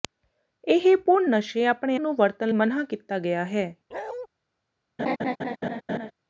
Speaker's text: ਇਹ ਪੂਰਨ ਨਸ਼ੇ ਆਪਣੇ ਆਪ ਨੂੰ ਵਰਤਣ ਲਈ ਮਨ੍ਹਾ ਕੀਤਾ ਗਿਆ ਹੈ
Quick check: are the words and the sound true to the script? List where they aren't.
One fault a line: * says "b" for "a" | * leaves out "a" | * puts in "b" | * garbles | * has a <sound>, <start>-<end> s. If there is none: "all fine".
* leaves out "ਆਪ"
* leaves out "ਲਈ"
* has a bark, 3.9-4.3 s
* has a laugh, 5.0-6.1 s